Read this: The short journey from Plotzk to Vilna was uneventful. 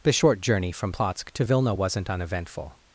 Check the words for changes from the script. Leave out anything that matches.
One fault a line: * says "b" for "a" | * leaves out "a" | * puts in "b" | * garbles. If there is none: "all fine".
* says "wasn't" for "was"